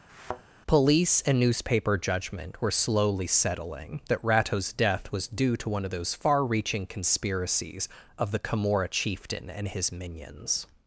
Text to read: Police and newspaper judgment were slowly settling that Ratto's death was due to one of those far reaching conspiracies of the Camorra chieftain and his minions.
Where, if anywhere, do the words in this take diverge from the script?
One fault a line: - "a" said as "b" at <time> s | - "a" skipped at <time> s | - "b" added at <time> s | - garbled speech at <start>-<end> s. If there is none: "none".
none